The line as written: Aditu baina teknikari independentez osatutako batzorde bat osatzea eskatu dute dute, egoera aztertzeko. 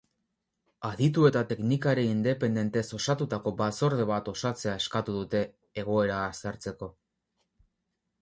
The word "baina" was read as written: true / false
false